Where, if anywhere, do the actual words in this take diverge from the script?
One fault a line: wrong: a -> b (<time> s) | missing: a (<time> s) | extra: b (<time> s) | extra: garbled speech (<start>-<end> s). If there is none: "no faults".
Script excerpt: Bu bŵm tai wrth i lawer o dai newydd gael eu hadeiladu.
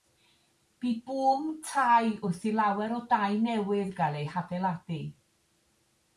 no faults